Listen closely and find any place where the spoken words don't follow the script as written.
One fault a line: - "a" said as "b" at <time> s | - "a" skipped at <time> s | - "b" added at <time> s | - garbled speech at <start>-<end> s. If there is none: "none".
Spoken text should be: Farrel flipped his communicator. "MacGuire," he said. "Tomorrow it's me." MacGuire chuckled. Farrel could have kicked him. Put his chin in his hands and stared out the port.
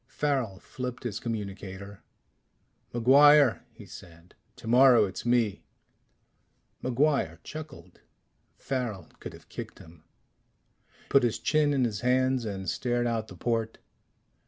none